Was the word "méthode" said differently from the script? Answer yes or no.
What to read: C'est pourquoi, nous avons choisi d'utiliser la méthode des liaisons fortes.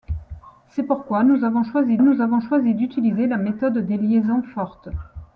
no